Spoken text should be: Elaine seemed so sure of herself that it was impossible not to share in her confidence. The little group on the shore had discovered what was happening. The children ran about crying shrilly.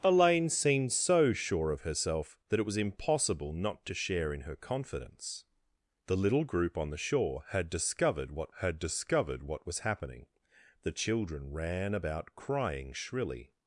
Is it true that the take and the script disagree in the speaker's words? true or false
true